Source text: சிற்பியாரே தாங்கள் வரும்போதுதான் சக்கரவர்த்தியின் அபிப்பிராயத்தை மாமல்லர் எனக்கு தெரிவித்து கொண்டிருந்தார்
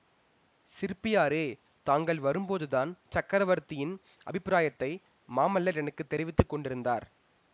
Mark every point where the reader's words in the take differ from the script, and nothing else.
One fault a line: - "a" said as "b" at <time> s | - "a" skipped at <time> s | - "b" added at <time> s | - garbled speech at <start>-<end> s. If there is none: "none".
none